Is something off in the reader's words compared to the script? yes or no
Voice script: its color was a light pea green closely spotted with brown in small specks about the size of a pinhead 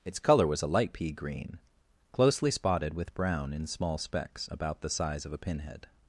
no